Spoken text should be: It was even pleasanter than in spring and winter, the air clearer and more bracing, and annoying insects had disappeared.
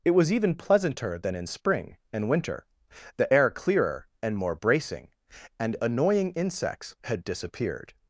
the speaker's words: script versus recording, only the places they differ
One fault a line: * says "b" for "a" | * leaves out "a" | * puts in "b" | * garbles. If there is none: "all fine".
all fine